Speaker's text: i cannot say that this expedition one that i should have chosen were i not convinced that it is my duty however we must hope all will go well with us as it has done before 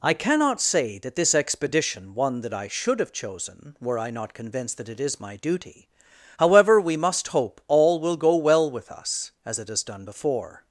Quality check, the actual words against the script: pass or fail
pass